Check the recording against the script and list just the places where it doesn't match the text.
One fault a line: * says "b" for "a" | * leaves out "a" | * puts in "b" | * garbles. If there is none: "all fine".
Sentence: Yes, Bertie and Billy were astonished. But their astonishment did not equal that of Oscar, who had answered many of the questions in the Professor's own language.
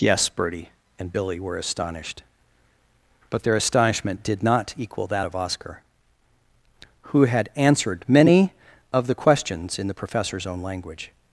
all fine